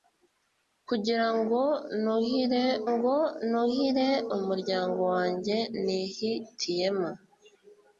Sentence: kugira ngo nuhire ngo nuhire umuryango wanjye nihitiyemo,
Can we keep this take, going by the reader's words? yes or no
yes